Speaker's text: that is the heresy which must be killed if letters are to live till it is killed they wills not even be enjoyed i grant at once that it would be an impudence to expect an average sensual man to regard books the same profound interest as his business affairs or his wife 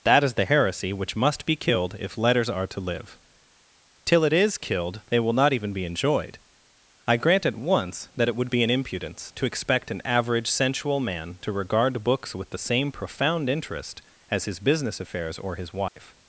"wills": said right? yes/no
no